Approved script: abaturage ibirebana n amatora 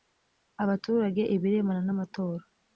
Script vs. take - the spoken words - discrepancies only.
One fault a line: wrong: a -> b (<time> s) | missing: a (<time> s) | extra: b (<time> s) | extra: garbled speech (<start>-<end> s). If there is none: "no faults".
no faults